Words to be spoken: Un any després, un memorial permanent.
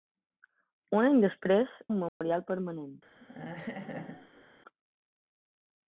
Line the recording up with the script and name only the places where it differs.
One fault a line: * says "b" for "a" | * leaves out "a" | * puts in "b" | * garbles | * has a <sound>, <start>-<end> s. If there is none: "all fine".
* has a dropout, 2.1-2.2 s
* has a laugh, 3.2-4.5 s